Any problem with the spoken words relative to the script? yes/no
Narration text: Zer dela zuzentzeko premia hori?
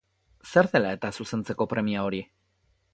yes